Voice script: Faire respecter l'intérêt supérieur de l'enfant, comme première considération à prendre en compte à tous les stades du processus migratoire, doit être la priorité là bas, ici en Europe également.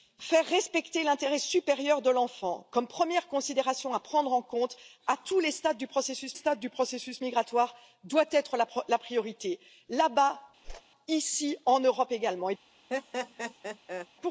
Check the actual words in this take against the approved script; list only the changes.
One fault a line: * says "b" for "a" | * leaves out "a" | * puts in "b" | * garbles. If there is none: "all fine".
* puts in "stades du processus"